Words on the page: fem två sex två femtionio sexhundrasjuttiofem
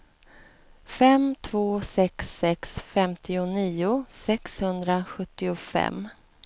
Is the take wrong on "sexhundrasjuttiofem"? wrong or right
right